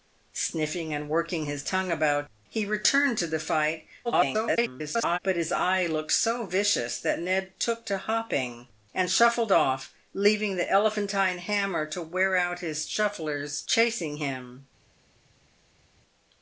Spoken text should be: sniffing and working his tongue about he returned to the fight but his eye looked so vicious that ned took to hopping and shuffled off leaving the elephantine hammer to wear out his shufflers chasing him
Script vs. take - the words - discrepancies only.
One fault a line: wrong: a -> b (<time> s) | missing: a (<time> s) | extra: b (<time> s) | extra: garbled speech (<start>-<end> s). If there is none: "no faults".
extra: garbled speech (4.0-5.2 s)